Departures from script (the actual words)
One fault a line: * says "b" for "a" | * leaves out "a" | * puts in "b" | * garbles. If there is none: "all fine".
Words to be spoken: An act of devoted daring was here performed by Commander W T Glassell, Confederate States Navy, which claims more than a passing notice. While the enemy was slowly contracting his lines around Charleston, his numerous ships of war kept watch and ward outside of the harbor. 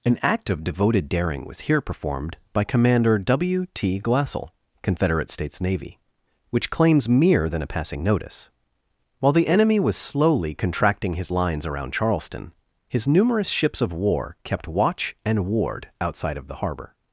* says "mere" for "more"